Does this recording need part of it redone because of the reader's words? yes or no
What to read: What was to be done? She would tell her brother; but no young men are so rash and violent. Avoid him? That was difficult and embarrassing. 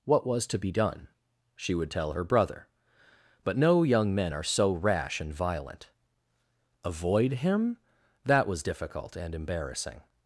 no